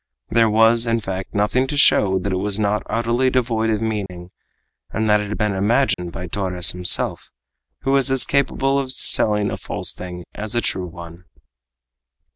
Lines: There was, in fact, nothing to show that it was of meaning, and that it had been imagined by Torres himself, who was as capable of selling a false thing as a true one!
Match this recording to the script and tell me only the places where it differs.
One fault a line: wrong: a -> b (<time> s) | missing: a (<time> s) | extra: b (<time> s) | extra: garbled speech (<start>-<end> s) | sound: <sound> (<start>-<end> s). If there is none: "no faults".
extra: not utterly devoid (2.6 s)
sound: dropout (4.1-4.1 s)
sound: dropout (5.9-6.0 s)